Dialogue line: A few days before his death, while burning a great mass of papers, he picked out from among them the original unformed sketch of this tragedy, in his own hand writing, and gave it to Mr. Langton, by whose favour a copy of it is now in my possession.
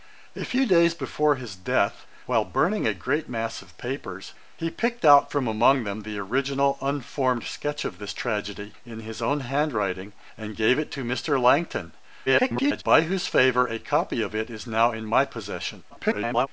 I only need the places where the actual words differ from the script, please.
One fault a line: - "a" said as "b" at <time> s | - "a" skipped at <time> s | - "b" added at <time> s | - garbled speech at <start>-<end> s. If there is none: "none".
- garbled speech at 12.3-12.8 s
- garbled speech at 15.9-16.5 s